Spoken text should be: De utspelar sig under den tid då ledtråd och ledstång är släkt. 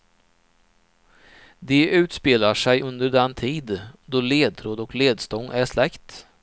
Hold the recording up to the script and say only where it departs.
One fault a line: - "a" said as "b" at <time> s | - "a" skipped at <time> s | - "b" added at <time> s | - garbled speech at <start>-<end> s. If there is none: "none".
none